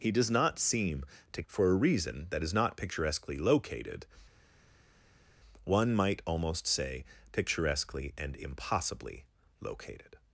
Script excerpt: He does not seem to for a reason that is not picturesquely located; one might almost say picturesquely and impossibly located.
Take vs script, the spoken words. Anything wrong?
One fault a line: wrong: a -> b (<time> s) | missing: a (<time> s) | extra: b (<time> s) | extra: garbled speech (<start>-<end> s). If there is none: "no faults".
no faults